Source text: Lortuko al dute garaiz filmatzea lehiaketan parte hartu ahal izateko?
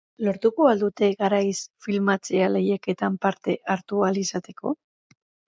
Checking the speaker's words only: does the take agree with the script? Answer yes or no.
yes